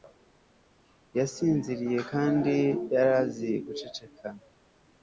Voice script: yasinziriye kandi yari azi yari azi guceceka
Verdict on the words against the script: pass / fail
fail